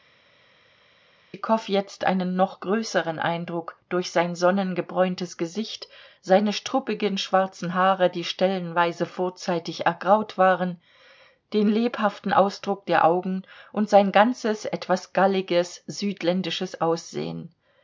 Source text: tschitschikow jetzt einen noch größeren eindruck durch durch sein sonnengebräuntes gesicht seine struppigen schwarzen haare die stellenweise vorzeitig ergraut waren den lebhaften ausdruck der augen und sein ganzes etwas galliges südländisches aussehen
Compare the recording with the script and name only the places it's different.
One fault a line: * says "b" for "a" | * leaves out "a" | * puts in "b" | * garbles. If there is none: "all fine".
* leaves out "durch"